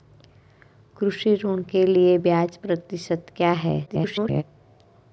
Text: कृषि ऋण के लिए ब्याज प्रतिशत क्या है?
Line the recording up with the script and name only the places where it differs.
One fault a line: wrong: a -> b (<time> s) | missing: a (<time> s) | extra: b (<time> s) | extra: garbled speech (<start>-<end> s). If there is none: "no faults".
extra: garbled speech (3.9-4.4 s)